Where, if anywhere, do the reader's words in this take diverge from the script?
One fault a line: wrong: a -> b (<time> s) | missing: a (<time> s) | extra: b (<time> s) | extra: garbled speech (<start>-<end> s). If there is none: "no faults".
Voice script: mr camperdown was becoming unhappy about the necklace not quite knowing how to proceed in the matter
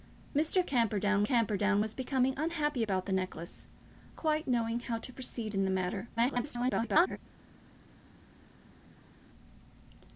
extra: camperdown (1.2 s)
missing: not (3.7 s)
extra: garbled speech (6.2-7.2 s)